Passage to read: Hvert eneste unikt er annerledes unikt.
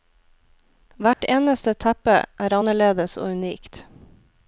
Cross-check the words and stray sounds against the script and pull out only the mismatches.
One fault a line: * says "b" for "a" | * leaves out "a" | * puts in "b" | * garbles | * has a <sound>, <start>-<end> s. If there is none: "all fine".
* has a dropout, 1.1-1.2 s
* says "teppe" for "unikt"
* puts in "og"